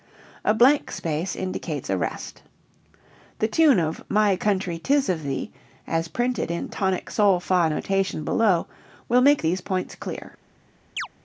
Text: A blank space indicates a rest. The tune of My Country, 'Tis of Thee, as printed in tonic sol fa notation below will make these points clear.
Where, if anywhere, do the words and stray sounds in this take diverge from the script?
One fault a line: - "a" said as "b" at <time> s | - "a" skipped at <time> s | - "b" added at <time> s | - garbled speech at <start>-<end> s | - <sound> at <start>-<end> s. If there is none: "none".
- chirp at 11.0-11.1 s